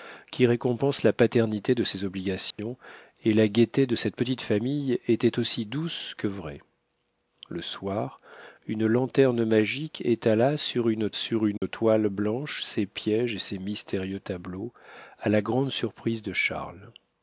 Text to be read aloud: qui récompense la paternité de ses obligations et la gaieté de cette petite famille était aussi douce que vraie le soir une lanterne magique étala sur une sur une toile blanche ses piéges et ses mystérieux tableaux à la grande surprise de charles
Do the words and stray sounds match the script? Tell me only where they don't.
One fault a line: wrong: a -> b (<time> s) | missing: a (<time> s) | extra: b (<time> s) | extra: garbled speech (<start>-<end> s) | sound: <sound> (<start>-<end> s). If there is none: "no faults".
sound: dropout (2.5-2.6 s)
sound: dropout (11.6-11.6 s)